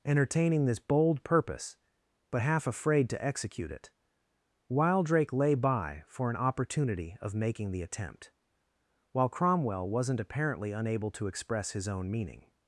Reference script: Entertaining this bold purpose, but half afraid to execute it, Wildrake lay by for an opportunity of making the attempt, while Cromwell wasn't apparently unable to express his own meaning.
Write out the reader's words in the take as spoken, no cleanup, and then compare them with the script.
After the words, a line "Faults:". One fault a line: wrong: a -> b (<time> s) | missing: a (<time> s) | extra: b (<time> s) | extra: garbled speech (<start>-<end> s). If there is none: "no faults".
Entertaining this bold purpose, but half afraid to execute it, Wildrake lay by for an opportunity of making the attempt, while Cromwell wasn't apparently unable to express his own meaning.
Faults:
no faults